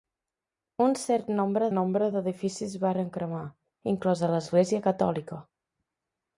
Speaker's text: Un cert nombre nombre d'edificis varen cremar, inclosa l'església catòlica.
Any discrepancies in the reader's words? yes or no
no